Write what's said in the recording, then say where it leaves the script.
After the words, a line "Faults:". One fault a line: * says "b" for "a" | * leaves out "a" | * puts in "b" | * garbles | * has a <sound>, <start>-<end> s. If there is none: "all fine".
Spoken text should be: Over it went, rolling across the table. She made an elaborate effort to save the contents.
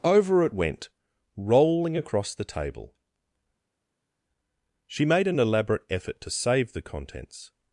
Over it went, rolling across the table. She made an elaborate effort to save the contents.
Faults:
all fine